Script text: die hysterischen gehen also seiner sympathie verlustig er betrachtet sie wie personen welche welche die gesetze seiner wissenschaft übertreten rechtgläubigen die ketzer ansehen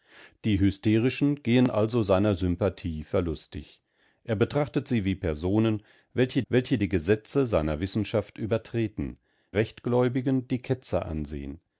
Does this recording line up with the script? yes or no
yes